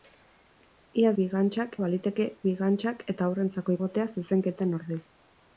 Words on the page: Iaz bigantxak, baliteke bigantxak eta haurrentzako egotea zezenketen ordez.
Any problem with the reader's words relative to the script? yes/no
no